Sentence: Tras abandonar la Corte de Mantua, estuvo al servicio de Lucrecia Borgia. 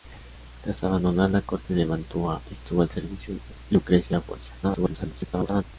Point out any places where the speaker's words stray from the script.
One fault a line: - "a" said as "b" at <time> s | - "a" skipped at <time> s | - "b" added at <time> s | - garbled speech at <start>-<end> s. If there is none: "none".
- garbled speech at 4.6-5.6 s